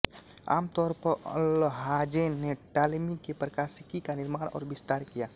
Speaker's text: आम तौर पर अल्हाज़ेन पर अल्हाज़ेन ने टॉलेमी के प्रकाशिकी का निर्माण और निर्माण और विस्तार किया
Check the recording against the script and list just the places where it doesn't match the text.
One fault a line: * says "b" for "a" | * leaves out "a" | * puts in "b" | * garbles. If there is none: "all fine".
* leaves out "पर अल्हाज़ेन"
* leaves out "निर्माण और"